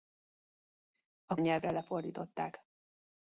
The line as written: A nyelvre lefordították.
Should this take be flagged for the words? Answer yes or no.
no